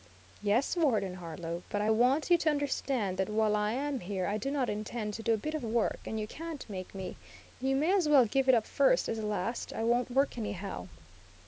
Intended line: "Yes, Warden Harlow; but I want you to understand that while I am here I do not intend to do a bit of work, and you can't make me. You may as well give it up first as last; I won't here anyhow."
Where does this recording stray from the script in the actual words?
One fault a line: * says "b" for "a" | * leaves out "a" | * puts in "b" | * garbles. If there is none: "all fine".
* says "work" for "here"